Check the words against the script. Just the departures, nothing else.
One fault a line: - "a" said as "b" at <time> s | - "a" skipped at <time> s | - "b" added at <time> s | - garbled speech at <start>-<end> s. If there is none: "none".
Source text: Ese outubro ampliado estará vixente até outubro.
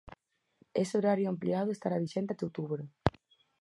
- "outubro" said as "horario" at 1.0 s